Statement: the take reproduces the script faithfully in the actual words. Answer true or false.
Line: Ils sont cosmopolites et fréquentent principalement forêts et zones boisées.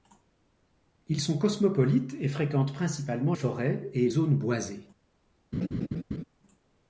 true